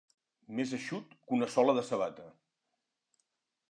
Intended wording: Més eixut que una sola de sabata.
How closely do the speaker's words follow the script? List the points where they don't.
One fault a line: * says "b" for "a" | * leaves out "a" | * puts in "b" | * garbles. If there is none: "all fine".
all fine